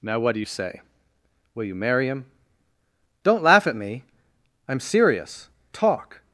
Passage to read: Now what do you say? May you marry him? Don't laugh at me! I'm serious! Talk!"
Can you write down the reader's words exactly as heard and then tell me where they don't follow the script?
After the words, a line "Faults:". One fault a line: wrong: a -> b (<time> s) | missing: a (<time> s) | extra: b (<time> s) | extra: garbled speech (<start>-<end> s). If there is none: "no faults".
Now what do you say? Will you marry him? Don't laugh at me! I'm serious! Talk!"
Faults:
wrong: May -> Will (1.5 s)